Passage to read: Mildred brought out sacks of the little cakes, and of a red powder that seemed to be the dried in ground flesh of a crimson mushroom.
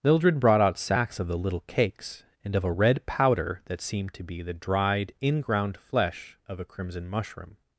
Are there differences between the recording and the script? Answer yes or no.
no